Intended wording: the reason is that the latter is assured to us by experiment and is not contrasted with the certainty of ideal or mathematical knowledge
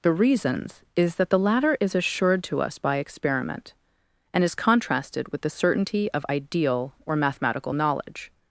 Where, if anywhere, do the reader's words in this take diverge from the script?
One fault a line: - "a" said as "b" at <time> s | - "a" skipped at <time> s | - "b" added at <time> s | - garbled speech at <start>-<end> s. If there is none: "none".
- "reason" said as "reasons" at 0.1 s
- "not" skipped at 4.5 s